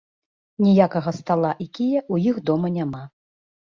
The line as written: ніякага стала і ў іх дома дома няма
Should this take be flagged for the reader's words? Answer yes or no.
yes